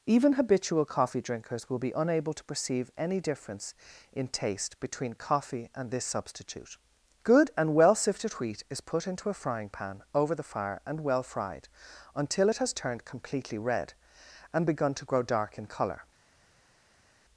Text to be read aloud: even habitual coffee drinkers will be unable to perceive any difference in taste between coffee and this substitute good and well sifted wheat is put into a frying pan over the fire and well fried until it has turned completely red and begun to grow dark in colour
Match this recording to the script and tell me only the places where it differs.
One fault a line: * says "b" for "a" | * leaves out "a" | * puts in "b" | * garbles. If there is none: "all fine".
all fine